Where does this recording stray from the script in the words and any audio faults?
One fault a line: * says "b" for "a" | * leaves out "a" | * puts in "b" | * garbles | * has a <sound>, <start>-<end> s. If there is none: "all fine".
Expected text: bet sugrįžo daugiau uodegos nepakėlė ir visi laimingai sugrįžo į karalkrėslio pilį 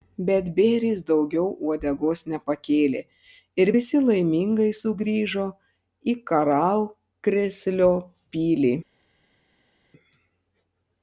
* says "bėris" for "sugrįžo"